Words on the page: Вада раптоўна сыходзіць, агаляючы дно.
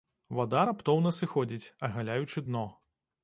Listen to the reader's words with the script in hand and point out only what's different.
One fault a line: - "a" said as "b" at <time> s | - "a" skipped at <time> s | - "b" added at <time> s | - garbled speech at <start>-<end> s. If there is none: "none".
none